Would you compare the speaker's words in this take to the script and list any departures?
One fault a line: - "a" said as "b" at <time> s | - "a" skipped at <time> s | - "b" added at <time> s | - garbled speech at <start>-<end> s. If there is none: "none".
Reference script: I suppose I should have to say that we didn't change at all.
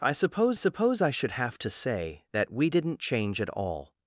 - "suppose" added at 0.6 s